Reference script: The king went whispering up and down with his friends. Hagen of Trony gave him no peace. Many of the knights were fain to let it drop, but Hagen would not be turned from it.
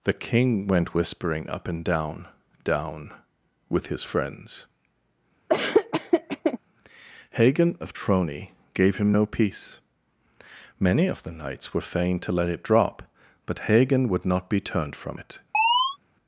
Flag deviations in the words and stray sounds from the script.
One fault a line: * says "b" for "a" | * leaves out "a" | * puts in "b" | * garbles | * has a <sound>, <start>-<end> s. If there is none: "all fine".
* puts in "down"
* has a laugh, 5.5-6.6 s
* has a chirp, 15.5-16.0 s